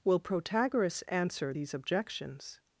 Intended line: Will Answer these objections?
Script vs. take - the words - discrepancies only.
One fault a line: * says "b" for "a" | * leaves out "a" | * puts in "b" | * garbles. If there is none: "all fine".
* puts in "Protagoras"